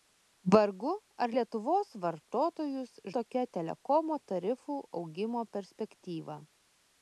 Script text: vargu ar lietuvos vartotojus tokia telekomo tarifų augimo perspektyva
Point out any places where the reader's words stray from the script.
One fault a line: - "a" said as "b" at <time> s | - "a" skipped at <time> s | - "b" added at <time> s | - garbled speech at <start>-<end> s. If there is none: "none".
none